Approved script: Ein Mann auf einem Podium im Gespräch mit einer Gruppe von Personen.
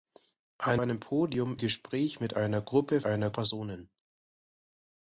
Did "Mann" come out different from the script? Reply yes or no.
yes